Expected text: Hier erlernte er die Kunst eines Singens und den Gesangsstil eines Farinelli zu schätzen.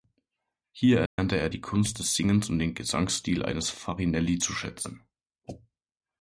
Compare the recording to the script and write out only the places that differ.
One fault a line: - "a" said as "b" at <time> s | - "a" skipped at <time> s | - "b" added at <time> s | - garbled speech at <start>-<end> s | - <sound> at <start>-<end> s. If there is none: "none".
- dropout at 1.1-1.2 s
- "eines" said as "des" at 2.0 s